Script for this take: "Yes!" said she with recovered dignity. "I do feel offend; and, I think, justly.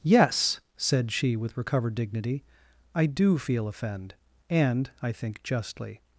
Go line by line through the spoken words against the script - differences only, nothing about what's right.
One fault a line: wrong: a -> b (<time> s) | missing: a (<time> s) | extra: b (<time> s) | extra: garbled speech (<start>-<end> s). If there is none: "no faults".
no faults